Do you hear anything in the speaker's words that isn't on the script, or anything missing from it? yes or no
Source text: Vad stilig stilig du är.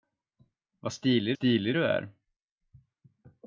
no